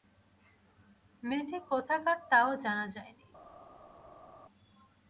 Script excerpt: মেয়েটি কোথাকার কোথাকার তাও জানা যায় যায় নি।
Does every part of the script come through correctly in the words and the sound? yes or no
no